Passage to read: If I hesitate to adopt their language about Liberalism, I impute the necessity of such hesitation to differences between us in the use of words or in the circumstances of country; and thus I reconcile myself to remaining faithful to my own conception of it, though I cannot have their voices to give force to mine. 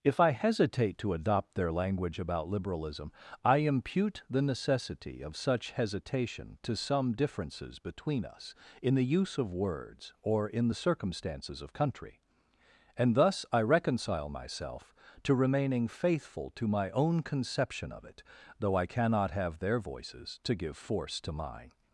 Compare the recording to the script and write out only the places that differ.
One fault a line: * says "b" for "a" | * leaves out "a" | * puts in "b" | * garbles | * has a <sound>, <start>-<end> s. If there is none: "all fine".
* puts in "some"